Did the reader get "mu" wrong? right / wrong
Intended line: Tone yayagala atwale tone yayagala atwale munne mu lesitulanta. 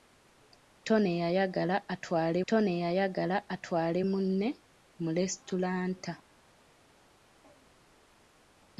right